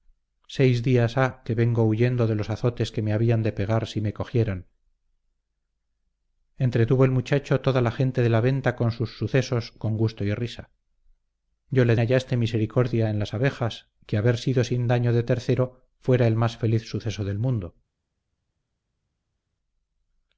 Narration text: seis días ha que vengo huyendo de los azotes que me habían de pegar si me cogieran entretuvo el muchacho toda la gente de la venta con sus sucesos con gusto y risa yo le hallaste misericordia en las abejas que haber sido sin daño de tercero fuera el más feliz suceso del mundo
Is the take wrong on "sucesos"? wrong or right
right